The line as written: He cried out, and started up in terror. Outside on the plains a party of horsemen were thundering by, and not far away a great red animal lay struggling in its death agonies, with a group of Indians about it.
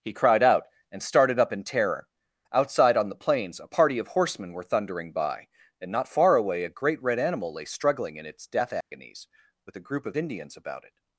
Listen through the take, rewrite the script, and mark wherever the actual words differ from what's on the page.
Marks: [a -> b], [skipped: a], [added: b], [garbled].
He cried out, and started up in terror. Outside on the plains a party of horsemen were thundering by, and not far away a great red animal lay struggling in its death agonies, with a group of Indians about it.